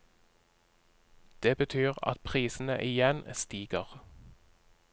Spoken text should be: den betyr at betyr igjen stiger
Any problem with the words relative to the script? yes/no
yes